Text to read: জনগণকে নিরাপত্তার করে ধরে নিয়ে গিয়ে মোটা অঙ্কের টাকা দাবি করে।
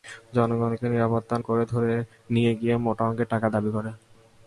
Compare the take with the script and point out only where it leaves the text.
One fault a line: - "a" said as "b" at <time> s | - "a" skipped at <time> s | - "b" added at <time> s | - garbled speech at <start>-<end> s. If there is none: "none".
none